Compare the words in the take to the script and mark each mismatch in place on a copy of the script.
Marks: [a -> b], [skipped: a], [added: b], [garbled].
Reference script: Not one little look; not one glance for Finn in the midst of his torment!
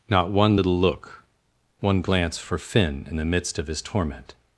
Not one little look; [skipped: not] one glance for Finn in the midst of his torment!